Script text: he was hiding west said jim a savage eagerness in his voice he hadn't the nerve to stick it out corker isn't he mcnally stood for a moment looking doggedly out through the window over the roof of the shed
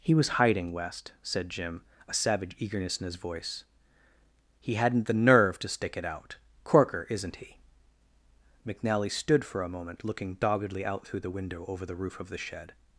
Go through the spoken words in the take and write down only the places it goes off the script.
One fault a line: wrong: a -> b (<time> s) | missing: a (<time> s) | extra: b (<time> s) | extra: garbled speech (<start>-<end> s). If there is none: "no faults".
no faults